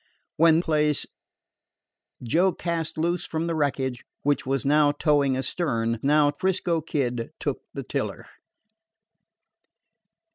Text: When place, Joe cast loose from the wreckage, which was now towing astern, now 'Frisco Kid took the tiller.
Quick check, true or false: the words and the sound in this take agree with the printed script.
true